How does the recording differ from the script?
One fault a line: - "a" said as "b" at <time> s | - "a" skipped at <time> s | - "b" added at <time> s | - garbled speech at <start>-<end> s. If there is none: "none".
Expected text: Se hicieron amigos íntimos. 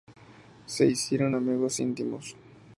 none